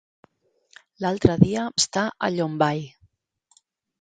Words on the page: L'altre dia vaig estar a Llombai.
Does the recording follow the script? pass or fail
fail